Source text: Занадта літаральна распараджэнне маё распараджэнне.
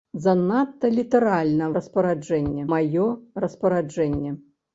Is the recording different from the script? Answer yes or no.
no